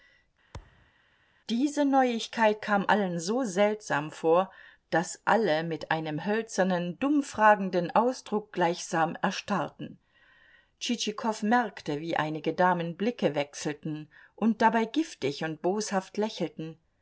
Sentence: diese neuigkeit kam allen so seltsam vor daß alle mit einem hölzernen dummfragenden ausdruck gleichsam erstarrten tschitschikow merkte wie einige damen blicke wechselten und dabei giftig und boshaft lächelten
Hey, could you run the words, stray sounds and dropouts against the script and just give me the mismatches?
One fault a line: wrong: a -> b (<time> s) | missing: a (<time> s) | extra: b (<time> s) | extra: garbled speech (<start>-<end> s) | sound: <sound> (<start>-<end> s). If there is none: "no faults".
sound: thud (0.5-0.9 s)